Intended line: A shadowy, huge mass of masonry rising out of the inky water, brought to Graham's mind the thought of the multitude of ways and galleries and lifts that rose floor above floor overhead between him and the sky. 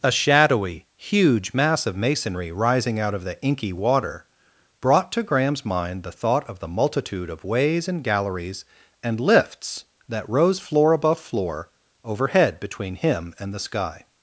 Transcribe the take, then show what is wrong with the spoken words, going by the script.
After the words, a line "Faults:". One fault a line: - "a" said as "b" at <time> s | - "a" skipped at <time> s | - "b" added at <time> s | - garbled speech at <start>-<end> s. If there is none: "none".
A shadowy, huge mass of masonry rising out of the inky water, brought to Graham's mind the thought of the multitude of ways and galleries and lifts that rose floor above floor overhead between him and the sky.
Faults:
none